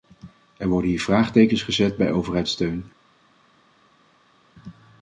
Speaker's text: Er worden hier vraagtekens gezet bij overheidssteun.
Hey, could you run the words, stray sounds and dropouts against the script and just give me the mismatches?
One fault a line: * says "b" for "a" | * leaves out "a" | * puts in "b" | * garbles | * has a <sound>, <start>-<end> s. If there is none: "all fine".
all fine